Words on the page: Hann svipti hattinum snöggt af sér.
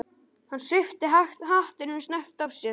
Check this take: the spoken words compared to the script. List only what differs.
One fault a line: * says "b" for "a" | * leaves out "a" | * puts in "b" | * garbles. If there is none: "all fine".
all fine